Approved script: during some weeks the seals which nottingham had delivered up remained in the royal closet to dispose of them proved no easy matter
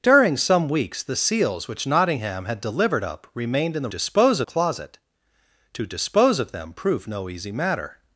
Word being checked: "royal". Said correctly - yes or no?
no